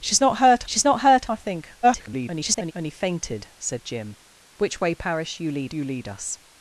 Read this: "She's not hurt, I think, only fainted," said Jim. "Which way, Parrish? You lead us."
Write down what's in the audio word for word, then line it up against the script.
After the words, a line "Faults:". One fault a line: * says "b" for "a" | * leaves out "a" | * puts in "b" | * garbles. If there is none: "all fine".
"She's not hurt she's not hurt, I think, [garbled] only fainted," said Jim. "Which way, Parrish? You lead you lead us."
Faults:
* puts in "she's not hurt"
* garbles
* puts in "you lead"